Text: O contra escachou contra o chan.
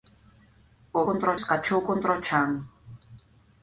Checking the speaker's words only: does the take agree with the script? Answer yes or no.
yes